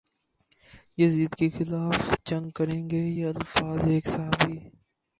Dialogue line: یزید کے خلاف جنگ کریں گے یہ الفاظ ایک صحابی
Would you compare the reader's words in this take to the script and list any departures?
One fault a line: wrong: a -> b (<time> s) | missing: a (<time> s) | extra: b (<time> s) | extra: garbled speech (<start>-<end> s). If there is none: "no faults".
no faults